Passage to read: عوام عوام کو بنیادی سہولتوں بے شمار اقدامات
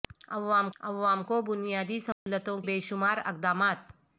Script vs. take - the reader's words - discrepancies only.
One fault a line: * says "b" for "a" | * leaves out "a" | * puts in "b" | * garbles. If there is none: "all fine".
all fine